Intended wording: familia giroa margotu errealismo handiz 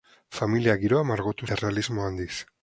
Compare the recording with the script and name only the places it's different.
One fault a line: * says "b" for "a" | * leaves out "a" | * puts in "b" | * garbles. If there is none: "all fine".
all fine